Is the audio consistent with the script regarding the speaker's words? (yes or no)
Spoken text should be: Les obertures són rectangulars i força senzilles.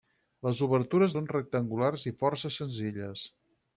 yes